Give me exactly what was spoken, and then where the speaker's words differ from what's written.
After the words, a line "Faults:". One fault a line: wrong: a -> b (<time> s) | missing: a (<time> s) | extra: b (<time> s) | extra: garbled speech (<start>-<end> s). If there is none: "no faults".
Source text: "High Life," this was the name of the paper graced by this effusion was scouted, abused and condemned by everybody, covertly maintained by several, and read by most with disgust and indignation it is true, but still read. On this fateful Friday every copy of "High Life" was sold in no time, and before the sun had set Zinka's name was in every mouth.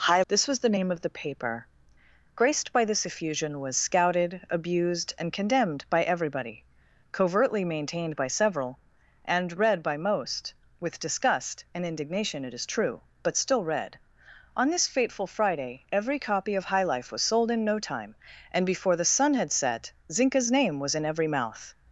"High," This was the name of the paper graced by this effusion was scouted, abused and condemned by everybody, covertly maintained by several, and read by most with disgust and indignation it is true, but still read. On this fateful Friday every copy of "High Life" was sold in no time, and before the sun had set Zinka's name was in every mouth.
Faults:
missing: Life (0.2 s)